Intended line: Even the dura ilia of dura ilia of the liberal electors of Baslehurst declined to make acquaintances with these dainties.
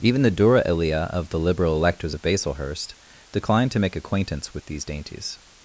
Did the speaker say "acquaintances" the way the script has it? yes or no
no